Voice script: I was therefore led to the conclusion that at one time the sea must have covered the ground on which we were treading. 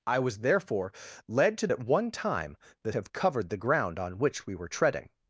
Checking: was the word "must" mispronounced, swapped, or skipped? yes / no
yes